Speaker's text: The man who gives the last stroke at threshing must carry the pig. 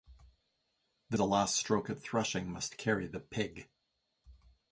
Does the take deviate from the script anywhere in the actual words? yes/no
yes